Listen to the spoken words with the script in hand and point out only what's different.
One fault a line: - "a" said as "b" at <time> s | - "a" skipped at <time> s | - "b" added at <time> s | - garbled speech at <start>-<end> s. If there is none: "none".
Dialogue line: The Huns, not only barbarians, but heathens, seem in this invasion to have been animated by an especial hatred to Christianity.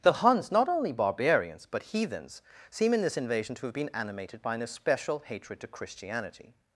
none